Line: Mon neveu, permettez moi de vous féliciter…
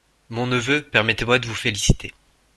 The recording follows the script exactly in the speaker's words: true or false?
true